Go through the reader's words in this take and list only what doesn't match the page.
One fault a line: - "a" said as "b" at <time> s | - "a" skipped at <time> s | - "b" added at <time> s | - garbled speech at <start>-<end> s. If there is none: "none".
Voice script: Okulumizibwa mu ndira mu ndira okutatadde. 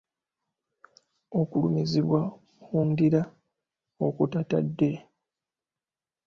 - "mu ndira" skipped at 3.2 s